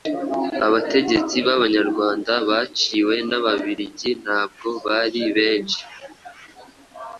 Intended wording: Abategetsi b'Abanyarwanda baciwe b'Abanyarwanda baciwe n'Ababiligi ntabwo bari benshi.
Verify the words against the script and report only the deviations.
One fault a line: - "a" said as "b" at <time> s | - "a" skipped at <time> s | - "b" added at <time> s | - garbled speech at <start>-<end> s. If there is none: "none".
- "b'Abanyarwanda baciwe" skipped at 3.1 s